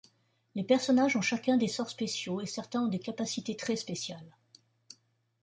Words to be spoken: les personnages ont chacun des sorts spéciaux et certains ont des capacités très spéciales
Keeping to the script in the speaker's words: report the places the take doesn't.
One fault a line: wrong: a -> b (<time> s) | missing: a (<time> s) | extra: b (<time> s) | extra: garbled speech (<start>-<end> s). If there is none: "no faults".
no faults